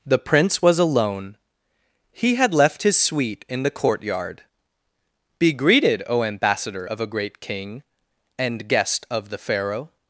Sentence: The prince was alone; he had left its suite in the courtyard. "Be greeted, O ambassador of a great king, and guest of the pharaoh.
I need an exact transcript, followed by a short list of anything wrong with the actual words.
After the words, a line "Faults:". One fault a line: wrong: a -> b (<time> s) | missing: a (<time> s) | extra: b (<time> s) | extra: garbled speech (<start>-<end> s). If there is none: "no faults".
The prince was alone; he had left his suite in the courtyard. "Be greeted, O ambassador of a great king, and guest of the pharaoh.
Faults:
wrong: its -> his (2.8 s)